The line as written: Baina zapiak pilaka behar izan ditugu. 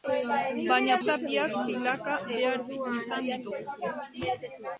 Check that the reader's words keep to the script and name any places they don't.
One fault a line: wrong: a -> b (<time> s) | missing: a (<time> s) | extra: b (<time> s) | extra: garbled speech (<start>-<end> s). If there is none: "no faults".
no faults